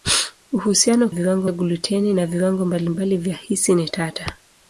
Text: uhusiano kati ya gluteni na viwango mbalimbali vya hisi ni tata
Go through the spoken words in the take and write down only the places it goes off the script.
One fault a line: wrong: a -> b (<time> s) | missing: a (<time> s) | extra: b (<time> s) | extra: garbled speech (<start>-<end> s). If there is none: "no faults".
wrong: kati -> viwango (1.1 s)